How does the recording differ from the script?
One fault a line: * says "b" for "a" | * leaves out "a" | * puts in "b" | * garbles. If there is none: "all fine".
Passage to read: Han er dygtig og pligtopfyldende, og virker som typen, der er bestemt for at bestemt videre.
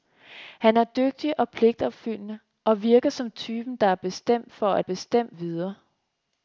all fine